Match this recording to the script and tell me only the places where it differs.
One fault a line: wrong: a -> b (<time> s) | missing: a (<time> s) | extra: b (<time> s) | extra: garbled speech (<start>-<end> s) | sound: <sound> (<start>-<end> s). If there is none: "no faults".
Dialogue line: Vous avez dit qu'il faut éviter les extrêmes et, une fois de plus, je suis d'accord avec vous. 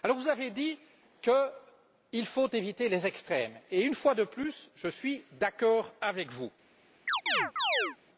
sound: chirp (7.1-8.0 s)